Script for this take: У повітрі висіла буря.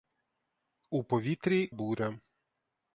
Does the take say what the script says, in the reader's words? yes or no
no